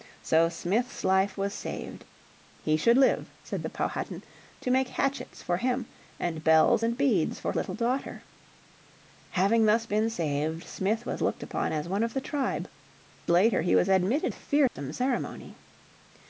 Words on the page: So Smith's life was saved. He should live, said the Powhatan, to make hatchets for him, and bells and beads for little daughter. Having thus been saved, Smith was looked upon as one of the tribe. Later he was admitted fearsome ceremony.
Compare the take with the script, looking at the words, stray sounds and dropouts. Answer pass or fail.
fail